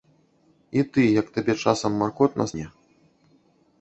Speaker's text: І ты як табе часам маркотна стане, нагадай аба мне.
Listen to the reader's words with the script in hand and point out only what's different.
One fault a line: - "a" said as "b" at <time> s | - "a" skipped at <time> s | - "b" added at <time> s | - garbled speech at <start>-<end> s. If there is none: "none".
- "стане нагадай аба" skipped at 2.5 s